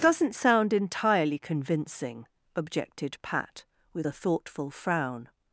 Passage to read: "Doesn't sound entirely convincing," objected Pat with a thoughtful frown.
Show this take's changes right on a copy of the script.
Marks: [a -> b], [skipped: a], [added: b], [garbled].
"Doesn't sound entirely convincing," objected Pat with a thoughtful frown.